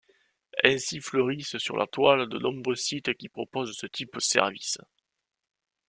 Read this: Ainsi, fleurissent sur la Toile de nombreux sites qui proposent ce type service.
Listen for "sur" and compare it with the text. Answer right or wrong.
right